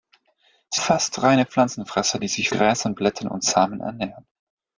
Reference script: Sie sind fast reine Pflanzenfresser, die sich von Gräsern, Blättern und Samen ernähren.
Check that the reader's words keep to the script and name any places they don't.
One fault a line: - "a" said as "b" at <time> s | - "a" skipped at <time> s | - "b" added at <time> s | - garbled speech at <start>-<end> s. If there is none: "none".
- "sind" skipped at 0.8 s
- "von" skipped at 2.5 s